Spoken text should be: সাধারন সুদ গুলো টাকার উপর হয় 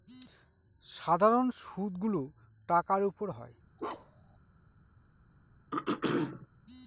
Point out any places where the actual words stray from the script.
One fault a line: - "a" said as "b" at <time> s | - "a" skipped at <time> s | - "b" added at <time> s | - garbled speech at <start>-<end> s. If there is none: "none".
none